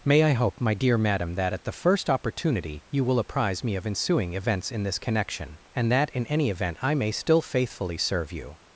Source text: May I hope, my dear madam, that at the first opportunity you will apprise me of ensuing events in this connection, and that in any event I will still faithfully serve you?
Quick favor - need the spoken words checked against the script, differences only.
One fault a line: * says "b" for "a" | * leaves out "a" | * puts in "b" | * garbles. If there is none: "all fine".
* says "may" for "will"